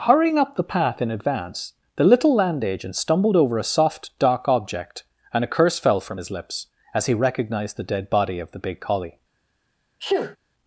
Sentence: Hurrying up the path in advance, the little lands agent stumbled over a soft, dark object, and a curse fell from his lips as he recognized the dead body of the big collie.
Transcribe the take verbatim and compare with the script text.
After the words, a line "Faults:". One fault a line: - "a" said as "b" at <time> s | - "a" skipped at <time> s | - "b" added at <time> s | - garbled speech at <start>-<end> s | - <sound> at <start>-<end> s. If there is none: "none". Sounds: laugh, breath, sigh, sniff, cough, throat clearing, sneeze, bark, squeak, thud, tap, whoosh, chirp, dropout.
Hurrying up the path in advance, the little land agent stumbled over a soft, dark object, and a curse fell from his lips as he recognized the dead body of the big collie.
Faults:
- "lands" said as "land" at 2.3 s
- sneeze at 10.0-10.4 s